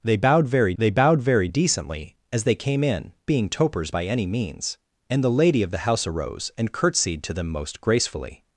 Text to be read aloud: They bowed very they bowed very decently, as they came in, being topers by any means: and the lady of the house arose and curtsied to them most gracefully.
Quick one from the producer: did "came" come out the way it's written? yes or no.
yes